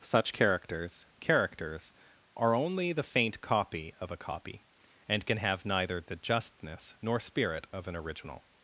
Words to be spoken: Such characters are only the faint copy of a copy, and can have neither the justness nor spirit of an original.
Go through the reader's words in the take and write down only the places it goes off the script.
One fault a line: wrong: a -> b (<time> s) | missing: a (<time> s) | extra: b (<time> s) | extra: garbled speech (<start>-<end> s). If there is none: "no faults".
extra: characters (1.2 s)